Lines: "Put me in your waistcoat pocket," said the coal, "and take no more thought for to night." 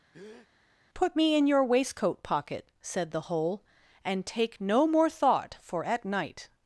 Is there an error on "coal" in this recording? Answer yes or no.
yes